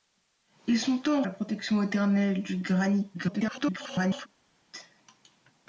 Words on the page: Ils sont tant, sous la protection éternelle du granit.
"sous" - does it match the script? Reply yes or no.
no